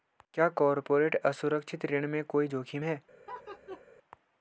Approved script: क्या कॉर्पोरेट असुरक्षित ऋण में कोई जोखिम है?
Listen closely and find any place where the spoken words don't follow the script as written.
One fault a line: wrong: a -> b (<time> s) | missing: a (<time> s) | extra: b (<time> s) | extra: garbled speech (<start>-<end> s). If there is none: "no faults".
no faults